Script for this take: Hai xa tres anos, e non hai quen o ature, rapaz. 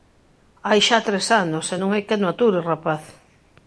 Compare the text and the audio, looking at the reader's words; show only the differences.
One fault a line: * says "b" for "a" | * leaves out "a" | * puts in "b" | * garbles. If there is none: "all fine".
all fine